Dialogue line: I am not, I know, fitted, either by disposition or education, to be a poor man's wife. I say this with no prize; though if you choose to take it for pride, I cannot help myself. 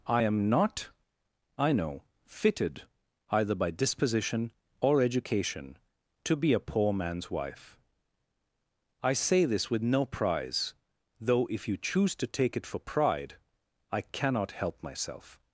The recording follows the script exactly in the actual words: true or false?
true